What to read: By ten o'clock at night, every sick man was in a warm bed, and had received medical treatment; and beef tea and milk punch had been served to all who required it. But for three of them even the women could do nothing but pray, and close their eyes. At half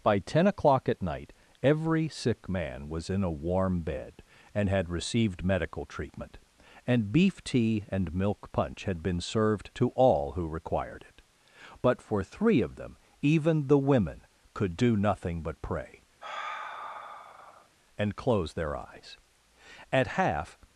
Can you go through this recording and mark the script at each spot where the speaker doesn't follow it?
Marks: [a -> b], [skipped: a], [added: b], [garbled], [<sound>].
By ten o'clock at night, every sick man was in a warm bed, and had received medical treatment; and beef tea and milk punch had been served to all who required it. But for three of them even the women could do nothing but pray, [sigh] and close their eyes. At half